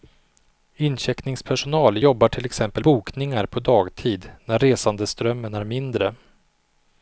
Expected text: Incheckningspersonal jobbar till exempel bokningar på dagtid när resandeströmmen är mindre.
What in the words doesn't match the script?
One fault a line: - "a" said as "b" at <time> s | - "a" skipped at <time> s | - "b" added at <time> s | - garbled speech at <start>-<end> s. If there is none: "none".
none